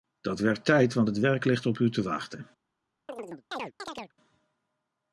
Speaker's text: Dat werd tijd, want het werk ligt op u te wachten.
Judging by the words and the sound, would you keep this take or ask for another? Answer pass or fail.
fail